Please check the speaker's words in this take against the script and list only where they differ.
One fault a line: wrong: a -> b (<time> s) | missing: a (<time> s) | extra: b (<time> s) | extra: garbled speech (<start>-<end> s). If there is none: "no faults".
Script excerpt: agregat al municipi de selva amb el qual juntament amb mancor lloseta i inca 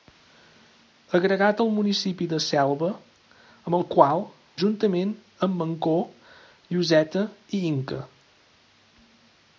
no faults